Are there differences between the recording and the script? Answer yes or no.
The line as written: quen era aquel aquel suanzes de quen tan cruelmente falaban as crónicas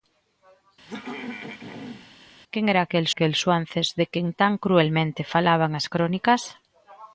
no